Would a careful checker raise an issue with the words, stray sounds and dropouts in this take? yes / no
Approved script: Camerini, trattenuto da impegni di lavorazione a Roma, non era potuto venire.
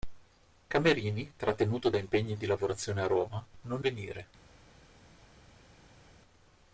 yes